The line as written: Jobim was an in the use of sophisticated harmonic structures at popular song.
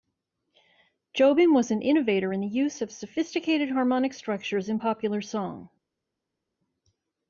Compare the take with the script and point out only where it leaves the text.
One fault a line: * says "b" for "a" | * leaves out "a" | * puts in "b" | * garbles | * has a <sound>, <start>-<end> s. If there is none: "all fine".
* puts in "innovator"
* says "in" for "at"